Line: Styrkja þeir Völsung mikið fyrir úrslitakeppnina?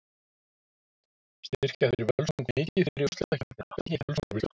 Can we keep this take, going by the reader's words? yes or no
no